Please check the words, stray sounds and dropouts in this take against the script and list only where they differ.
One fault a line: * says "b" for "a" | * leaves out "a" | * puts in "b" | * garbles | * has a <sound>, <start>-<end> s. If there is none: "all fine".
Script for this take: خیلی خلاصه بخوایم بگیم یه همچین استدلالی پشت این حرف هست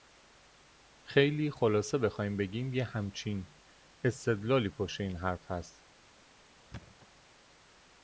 * has a thud, 6.7-7.1 s